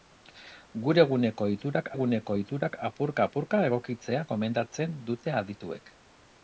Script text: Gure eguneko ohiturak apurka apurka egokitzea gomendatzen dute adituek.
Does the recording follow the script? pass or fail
fail